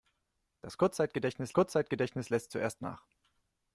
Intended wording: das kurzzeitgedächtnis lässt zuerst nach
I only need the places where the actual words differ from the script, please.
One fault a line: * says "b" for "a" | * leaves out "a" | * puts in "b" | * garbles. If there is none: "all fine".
* puts in "kurzzeitgedächtnis"